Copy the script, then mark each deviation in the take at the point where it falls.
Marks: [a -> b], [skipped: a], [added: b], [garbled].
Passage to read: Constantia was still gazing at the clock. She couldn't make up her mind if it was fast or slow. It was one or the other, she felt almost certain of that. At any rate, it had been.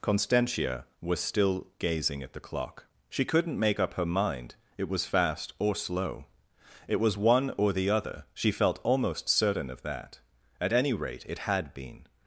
Constantia was still gazing at the clock. She couldn't make up her mind [skipped: if] it was fast or slow. It was one or the other, she felt almost certain of that. At any rate, it had been.